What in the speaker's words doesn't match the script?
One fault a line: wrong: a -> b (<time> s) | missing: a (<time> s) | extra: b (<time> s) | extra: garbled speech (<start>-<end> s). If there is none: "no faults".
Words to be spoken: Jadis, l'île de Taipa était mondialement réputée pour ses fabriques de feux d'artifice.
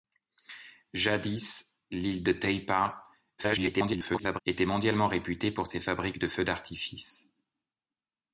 extra: garbled speech (3.4-4.4 s)